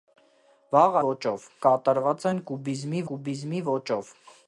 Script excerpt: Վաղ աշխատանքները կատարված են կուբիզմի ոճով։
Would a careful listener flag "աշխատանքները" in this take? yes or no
yes